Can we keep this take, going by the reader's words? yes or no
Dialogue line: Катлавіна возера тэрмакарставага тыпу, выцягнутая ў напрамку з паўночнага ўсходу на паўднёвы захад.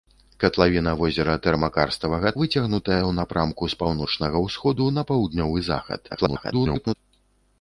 no